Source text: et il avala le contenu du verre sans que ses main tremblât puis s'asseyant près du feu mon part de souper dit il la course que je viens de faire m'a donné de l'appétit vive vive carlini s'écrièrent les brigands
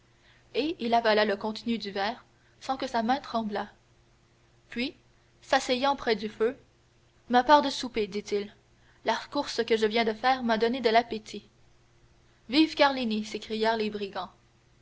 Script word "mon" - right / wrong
wrong